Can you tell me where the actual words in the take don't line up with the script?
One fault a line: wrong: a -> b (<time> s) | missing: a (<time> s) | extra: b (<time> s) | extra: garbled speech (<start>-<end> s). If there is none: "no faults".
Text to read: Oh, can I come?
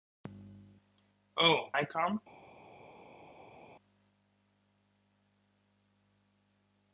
missing: can (1.6 s)